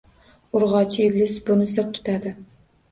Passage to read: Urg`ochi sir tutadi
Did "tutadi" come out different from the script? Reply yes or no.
no